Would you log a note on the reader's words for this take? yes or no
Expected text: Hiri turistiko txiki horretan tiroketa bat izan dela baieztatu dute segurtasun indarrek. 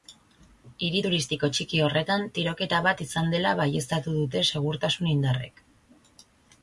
no